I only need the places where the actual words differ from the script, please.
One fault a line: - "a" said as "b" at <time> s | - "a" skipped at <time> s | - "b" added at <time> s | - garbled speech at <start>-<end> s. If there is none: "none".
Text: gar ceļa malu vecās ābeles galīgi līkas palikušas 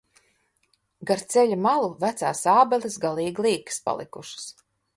none